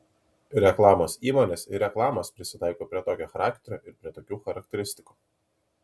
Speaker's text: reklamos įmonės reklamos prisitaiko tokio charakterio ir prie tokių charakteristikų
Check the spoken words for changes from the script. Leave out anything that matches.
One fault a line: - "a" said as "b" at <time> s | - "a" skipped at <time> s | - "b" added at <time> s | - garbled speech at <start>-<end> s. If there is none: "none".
- "ir" added at 1.7 s
- "prie" added at 2.9 s